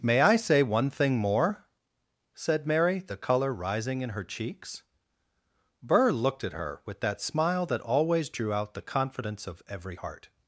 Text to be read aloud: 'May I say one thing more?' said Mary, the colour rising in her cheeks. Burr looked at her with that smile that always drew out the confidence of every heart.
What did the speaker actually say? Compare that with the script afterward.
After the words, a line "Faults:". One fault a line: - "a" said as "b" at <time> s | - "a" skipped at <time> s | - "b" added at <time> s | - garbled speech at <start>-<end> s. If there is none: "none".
'May I say one thing more?' said Mary, the colour rising in her cheeks. Burr looked at her with that smile that always drew out the confidence of every heart.
Faults:
none